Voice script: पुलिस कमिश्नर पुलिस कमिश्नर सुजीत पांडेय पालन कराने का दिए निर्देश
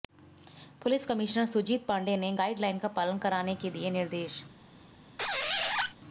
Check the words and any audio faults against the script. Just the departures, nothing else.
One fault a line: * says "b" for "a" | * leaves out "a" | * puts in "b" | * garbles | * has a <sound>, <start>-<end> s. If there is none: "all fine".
* says "सुजीत पांडेय ने गाइडलाइन का" for "पुलिस कमिश्नर सुजीत पांडेय"
* says "के" for "का"
* has a squeak, 5.2-5.9 s